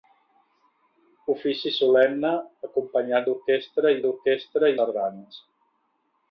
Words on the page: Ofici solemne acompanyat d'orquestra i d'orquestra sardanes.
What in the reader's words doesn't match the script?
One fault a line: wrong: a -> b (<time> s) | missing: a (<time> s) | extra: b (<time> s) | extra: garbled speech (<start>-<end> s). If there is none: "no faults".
no faults